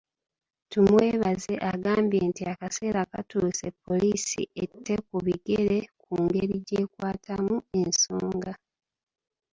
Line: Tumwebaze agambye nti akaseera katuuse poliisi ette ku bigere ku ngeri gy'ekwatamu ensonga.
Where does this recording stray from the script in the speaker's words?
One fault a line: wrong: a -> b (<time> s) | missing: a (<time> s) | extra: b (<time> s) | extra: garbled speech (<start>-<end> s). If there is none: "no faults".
no faults